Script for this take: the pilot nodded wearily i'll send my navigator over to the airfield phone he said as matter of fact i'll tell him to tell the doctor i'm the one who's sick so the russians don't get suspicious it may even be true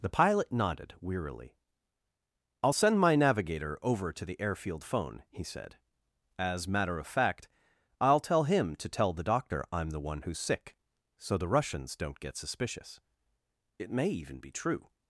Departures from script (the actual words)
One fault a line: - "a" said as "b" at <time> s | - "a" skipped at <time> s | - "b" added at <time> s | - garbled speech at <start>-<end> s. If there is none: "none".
none